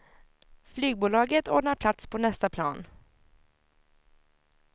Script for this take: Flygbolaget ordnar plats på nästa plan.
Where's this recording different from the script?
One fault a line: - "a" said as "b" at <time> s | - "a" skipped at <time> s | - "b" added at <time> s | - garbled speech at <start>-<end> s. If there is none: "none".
none